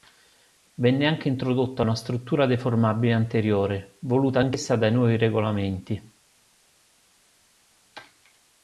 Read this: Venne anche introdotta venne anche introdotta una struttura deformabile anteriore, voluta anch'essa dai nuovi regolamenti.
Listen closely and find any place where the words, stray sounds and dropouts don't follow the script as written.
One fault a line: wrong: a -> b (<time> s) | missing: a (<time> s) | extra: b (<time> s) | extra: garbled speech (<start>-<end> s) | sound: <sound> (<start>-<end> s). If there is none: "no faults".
missing: venne anche introdotta (1.8 s)